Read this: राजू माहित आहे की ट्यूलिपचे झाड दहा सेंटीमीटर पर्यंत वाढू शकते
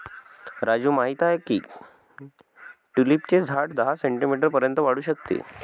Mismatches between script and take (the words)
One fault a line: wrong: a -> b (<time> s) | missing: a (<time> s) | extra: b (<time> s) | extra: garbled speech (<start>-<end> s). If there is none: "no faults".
no faults